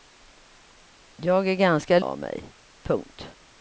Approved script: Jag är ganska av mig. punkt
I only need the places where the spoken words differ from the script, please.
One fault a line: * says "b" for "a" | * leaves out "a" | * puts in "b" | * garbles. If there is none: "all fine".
all fine